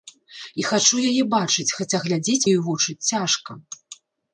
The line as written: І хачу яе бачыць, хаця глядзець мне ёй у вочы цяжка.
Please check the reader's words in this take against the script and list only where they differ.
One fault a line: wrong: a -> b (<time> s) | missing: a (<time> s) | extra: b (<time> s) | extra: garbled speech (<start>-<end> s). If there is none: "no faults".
missing: мне (2.4 s)